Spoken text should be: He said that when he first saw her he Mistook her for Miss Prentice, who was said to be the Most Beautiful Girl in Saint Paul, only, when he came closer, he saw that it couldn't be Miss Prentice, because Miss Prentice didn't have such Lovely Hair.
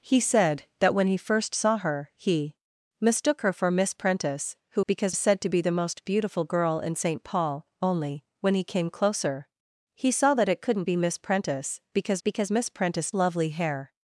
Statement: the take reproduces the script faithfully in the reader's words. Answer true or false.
false